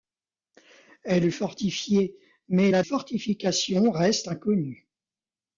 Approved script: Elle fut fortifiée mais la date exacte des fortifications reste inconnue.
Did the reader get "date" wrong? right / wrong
wrong